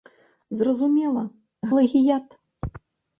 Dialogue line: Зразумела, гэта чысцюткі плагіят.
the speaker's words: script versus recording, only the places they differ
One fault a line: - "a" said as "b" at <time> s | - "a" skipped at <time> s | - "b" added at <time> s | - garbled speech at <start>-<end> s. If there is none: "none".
- "гэта чысцюткі" skipped at 1.2 s